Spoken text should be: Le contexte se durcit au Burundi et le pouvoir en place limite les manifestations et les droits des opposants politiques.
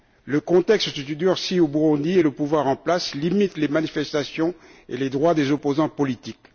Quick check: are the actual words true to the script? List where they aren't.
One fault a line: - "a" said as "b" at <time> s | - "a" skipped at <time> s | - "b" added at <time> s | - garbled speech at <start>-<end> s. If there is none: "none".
none